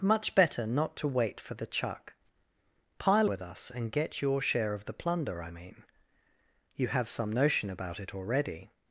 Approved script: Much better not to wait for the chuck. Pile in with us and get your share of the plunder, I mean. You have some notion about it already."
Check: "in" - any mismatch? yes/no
yes